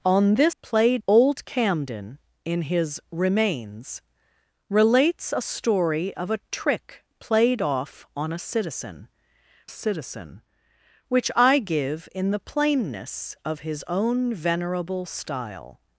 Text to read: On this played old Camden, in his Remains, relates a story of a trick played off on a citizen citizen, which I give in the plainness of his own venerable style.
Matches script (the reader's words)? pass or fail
pass